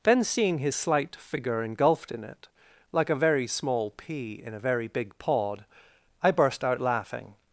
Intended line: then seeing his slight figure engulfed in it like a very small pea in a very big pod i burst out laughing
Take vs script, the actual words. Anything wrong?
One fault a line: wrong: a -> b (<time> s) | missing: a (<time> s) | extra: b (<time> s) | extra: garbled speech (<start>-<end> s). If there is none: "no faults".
no faults